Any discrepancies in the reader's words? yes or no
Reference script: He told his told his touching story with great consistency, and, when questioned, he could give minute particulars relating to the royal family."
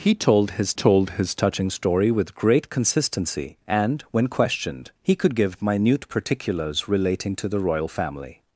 no